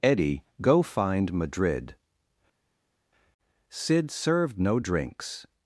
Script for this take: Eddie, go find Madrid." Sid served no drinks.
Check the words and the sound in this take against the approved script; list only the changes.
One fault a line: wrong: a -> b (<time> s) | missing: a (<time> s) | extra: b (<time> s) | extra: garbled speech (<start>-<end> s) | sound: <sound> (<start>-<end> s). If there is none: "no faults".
no faults